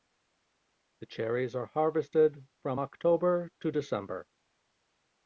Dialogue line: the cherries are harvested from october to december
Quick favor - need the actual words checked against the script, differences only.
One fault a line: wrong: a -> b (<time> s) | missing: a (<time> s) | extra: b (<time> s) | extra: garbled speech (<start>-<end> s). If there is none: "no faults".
no faults